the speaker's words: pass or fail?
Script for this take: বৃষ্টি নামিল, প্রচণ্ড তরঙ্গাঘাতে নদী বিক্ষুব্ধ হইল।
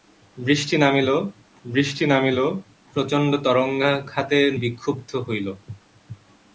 fail